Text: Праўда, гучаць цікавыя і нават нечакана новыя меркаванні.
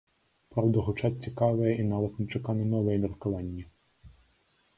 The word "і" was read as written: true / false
true